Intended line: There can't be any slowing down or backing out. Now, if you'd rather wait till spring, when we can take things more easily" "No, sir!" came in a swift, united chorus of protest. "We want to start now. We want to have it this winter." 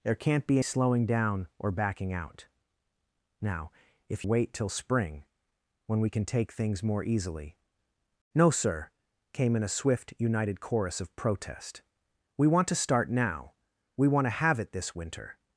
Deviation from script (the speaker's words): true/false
true